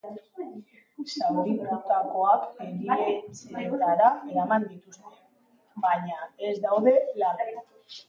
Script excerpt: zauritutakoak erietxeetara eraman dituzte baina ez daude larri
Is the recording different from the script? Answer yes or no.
no